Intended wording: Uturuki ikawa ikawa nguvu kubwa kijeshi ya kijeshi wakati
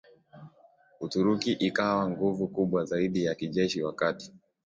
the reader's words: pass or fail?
fail